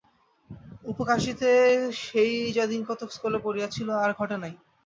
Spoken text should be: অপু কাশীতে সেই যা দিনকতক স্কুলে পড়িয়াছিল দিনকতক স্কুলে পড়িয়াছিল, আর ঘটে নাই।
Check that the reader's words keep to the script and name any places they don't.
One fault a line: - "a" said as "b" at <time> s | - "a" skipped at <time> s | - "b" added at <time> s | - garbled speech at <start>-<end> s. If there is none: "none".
- "দিনকতক স্কুলে পড়িয়াছিল" skipped at 3.9 s